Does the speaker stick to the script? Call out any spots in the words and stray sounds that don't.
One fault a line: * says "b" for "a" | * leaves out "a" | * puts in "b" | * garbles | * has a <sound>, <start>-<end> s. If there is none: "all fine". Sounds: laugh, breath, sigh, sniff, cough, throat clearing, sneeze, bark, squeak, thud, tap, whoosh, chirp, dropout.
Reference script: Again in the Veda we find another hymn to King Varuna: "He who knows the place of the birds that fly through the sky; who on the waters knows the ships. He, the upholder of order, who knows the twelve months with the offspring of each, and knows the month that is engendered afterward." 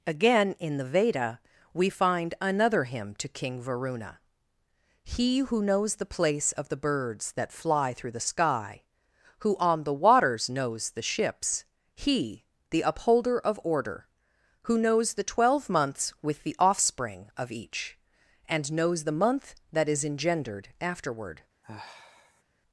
* has a sigh, 21.6-22.4 s